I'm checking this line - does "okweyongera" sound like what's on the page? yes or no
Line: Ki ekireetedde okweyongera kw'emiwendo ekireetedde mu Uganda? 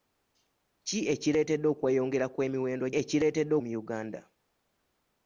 yes